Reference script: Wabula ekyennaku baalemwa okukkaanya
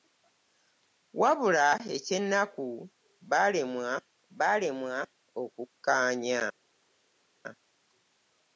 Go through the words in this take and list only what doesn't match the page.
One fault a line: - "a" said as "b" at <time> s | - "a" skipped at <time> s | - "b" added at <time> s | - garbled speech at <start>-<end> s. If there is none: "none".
- "baalemwa" added at 4.4 s